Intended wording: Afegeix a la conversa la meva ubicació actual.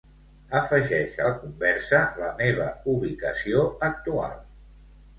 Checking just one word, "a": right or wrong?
right